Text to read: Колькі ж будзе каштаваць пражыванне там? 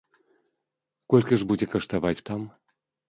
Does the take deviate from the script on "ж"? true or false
false